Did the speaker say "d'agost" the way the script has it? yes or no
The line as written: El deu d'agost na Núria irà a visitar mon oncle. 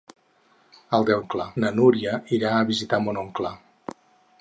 no